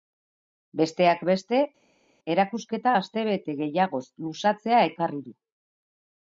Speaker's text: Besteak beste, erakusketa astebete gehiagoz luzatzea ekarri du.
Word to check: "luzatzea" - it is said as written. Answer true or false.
true